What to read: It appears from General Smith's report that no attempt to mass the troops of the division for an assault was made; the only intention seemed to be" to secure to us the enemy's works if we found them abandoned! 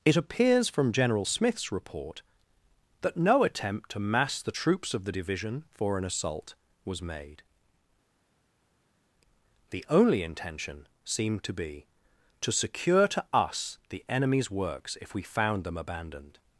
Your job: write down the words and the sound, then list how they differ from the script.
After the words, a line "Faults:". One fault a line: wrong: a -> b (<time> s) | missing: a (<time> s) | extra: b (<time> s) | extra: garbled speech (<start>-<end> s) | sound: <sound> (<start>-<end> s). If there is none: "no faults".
It appears from General Smith's report that no attempt to mass the troops of the division for an assault was made; the only intention seemed to be" to secure to us the enemy's works if we found them abandoned!
Faults:
no faults